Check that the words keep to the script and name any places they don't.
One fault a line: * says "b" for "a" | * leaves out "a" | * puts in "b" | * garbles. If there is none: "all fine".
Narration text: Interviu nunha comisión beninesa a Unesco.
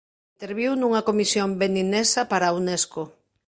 * puts in "para"